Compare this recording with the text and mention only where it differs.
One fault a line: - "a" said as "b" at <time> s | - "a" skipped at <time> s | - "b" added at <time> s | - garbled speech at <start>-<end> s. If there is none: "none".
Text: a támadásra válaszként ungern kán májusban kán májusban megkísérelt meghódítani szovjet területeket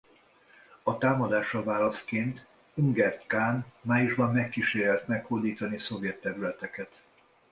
- "kán májusban" skipped at 4.3 s